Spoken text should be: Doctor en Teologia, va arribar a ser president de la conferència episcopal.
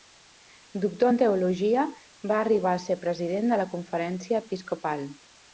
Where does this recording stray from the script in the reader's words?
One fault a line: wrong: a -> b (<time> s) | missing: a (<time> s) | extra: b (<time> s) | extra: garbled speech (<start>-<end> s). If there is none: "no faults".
no faults